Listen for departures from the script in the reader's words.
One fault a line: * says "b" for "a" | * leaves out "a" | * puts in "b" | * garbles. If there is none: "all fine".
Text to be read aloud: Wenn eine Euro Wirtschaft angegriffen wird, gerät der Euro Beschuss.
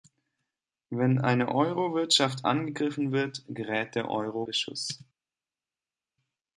all fine